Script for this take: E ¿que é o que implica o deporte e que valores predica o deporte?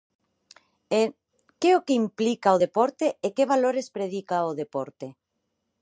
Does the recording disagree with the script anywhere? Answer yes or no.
no